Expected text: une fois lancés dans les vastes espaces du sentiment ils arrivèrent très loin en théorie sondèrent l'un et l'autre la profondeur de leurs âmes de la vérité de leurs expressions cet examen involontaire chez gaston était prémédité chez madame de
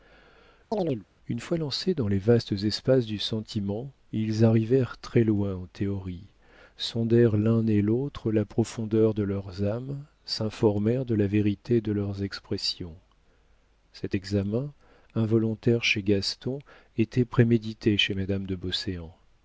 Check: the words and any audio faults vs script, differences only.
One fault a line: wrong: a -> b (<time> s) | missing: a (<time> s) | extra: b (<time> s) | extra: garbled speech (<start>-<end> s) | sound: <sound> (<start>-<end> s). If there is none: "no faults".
sound: chirp (0.7-1.1 s)
extra: s'informèrent (10.2 s)